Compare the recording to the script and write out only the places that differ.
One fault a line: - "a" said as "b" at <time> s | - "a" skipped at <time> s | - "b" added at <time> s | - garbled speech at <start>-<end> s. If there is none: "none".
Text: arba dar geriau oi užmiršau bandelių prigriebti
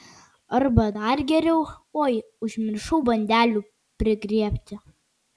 none